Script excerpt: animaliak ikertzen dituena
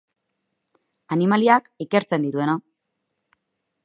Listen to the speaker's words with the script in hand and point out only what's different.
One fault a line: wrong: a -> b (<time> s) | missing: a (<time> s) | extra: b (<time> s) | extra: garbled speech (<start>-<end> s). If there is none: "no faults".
no faults